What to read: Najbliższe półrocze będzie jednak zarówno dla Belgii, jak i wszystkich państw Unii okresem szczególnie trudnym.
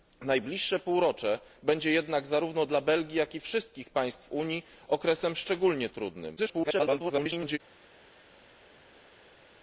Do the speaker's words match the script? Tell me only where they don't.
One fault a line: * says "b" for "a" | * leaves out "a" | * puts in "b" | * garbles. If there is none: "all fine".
* garbles